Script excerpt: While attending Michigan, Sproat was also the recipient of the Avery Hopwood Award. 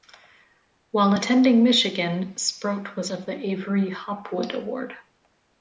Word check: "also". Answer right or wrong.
wrong